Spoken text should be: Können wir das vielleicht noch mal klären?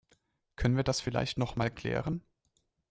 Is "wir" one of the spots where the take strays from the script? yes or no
no